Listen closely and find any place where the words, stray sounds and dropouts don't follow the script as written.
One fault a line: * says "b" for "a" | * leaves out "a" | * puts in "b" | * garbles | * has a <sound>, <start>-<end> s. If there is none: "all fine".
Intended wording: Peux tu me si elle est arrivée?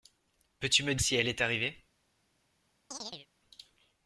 * has a chirp, 2.9-3.3 s